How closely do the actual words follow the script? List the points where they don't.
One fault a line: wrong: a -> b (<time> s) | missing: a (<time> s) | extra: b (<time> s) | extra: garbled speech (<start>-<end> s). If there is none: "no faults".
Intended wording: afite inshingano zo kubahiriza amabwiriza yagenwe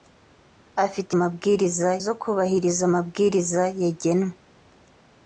wrong: inshingano -> amabwiriza (1.2 s)